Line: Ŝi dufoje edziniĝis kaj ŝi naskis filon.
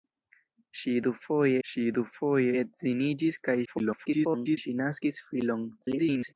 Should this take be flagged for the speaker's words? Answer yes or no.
yes